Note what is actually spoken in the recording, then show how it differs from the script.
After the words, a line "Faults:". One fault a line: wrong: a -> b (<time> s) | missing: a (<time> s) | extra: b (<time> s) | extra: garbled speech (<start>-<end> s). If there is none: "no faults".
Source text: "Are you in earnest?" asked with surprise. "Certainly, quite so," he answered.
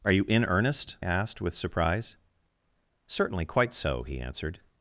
"Are you in earnest?" asked with surprise. "Certainly, quite so," he answered.
Faults:
no faults